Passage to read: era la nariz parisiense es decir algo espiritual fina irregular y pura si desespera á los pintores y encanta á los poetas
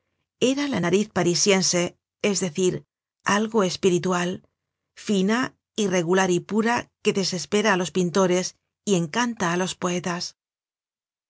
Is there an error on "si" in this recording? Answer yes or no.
yes